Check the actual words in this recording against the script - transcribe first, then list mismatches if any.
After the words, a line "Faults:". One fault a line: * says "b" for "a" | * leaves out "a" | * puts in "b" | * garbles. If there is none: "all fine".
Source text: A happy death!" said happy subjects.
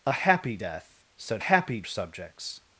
A happy death!" said happy subjects.
Faults:
all fine